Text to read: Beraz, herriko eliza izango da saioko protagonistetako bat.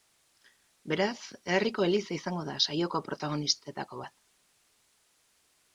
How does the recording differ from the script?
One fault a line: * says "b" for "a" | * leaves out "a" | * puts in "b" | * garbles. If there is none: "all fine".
all fine